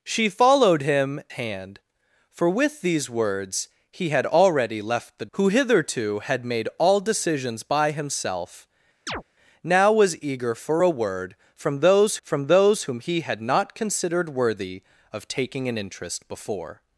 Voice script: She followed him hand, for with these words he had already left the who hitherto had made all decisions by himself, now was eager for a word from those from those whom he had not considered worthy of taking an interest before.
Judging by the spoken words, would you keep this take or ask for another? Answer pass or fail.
pass